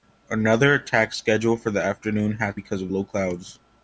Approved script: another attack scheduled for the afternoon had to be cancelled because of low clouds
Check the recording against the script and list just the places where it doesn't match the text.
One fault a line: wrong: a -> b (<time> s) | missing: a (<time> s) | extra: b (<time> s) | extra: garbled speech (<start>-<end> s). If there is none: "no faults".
missing: to be cancelled (2.6 s)